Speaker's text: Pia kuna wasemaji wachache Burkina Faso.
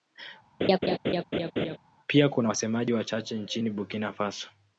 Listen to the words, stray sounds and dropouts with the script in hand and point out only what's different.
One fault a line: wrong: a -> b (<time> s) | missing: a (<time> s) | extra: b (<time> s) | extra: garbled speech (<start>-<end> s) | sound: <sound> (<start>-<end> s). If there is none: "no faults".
sound: laugh (0.6-1.8 s)
extra: nchini (3.4 s)